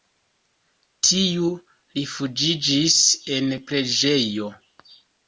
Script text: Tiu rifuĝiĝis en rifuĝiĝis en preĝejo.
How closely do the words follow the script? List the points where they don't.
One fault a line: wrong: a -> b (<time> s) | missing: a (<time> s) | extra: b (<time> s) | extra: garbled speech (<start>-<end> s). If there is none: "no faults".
missing: rifuĝiĝis en (3.5 s)